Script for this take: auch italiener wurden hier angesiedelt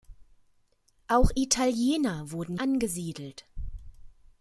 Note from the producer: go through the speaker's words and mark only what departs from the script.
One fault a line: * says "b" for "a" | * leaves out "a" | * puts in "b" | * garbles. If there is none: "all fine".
* leaves out "hier"